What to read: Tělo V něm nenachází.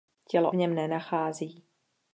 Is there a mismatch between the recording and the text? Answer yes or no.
no